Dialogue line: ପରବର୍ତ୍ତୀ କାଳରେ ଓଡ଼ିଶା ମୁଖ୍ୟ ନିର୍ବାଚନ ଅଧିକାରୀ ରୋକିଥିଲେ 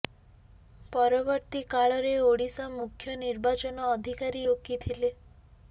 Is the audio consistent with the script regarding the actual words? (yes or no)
yes